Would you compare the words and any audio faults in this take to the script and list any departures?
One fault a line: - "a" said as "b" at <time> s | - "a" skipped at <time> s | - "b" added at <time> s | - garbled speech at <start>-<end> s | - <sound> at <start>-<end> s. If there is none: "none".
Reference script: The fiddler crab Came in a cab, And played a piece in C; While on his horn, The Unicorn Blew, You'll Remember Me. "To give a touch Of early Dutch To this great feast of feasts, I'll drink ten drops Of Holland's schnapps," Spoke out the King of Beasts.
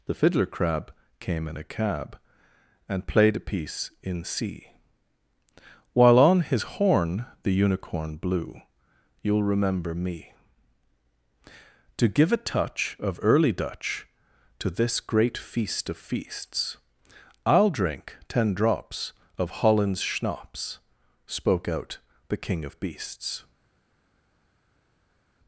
none